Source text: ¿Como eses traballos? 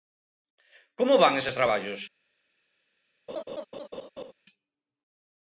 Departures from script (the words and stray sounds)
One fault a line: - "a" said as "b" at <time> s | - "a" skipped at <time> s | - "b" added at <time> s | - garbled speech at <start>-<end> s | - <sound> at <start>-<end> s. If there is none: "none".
- "van" added at 1.2 s
- laugh at 3.3-4.3 s